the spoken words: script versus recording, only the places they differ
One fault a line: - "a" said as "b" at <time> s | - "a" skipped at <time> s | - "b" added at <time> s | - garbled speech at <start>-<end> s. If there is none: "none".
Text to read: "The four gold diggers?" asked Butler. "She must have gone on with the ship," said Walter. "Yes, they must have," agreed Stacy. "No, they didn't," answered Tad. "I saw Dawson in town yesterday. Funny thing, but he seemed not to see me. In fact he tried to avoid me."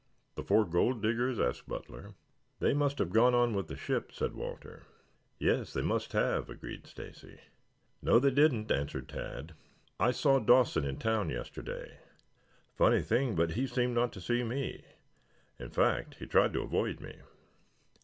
- "She" said as "They" at 2.6 s